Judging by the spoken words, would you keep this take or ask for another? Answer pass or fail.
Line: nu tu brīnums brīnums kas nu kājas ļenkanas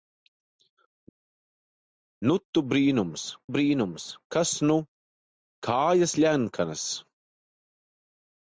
pass